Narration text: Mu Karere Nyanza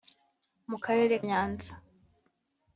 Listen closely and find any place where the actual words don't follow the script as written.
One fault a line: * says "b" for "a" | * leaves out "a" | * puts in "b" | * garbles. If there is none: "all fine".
all fine